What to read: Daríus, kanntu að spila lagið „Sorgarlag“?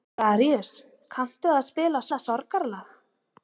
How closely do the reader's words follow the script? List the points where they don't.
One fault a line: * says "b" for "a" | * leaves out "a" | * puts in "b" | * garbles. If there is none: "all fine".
* puts in "lagið"